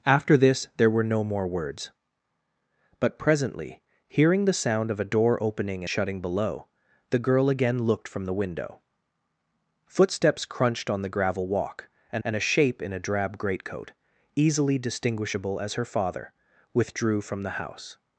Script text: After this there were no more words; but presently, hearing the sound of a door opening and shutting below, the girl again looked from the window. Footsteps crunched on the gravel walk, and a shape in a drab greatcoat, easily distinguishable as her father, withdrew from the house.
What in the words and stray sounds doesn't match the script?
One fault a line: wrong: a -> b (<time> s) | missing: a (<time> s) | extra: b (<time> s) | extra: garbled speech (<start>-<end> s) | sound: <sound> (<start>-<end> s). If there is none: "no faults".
missing: and (5.8 s)
extra: and (12.2 s)